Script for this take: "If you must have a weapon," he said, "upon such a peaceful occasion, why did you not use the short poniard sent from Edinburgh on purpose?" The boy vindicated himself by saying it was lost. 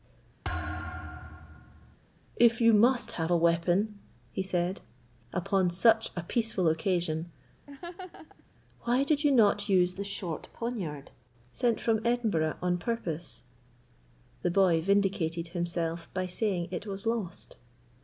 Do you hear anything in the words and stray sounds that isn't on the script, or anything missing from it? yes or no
yes